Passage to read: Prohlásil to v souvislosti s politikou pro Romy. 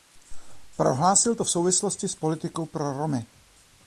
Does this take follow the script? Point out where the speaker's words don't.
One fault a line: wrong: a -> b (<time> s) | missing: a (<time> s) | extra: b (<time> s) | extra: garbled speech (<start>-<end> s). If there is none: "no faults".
no faults